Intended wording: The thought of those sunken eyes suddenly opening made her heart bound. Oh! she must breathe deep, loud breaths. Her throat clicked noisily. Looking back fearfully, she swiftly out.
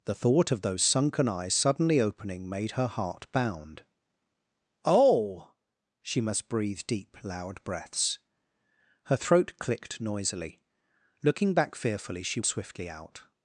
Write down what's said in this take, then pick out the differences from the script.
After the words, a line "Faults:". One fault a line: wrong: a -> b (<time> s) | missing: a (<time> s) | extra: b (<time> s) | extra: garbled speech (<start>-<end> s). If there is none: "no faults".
The thought of those sunken eyes suddenly opening made her heart bound. Oh! she must breathe deep, loud breaths. Her throat clicked noisily. Looking back fearfully, she swiftly out.
Faults:
no faults